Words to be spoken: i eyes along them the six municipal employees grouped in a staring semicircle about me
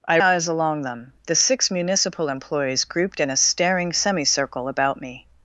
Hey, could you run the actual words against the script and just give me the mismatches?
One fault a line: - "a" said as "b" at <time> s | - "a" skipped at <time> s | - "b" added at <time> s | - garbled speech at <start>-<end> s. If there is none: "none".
none